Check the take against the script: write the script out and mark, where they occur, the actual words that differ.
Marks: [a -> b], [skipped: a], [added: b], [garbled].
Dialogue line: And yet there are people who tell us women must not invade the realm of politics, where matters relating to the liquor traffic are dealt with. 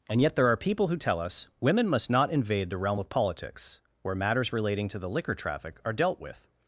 And yet there are people who tell us women must not invade the realm of politics, where matters relating to the liquor traffic are dealt with.